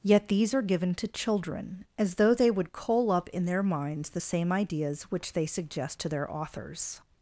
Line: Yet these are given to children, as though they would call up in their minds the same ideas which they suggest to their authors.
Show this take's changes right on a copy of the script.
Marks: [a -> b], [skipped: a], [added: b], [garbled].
Yet these are given to children, as though they would [call -> coal] up in their minds the same ideas which they suggest to their authors.